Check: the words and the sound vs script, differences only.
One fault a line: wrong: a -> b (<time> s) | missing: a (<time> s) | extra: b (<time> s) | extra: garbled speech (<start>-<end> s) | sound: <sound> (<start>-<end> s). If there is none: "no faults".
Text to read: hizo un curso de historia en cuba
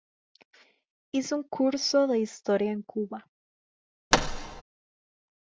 sound: thud (4.1-4.6 s)